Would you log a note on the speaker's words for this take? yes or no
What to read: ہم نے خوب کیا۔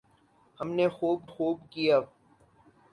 yes